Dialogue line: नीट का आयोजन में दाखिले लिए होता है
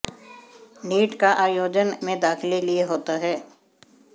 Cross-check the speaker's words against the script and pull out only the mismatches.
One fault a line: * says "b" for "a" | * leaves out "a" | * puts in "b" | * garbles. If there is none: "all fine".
all fine